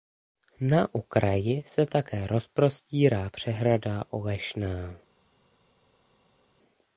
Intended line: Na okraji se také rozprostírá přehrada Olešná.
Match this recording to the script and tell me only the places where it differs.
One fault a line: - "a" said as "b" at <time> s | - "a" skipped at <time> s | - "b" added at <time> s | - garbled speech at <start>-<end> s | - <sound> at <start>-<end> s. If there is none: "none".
none